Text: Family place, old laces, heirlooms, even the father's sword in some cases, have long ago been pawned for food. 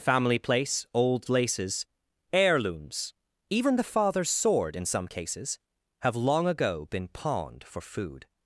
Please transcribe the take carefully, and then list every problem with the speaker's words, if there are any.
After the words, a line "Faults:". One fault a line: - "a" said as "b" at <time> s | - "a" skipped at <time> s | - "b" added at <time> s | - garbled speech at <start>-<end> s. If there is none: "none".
Family place, old laces, heirlooms, even the father's sword in some cases, have long ago been pawned for food.
Faults:
none